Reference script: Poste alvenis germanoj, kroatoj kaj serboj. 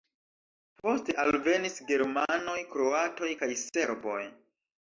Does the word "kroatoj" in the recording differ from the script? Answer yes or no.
no